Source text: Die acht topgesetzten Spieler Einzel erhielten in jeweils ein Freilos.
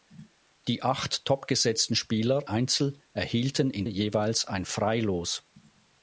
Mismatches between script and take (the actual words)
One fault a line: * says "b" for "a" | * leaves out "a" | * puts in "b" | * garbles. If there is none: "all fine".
all fine